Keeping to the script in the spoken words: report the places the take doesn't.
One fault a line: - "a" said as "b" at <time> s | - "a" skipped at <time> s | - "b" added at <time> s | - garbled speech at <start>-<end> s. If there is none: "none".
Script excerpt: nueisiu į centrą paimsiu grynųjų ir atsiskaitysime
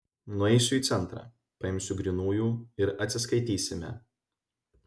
none